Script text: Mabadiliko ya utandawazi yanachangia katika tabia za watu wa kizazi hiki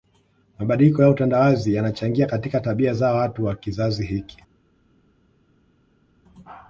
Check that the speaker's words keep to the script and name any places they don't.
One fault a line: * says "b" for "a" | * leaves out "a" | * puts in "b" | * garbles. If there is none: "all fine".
all fine